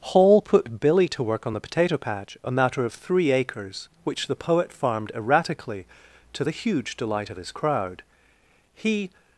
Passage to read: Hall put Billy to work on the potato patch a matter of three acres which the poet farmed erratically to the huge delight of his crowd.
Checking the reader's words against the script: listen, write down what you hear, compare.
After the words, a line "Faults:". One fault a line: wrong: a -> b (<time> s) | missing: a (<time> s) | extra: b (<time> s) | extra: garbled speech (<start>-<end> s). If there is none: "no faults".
Hall put Billy to work on the potato patch a matter of three acres which the poet farmed erratically to the huge delight of his crowd. He
Faults:
extra: He (8.7 s)